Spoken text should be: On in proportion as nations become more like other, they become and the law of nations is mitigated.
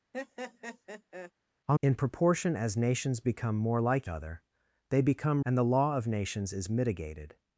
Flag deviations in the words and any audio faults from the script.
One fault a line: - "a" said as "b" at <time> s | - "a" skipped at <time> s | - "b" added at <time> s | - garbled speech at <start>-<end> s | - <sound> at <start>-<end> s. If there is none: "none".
- laugh at 0.1-1.3 s